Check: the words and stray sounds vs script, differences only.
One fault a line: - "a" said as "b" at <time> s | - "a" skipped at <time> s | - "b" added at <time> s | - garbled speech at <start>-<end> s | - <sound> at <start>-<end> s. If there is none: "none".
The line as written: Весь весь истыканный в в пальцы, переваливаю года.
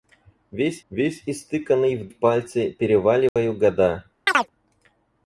- dropout at 3.3-3.4 s
- chirp at 4.3-4.5 s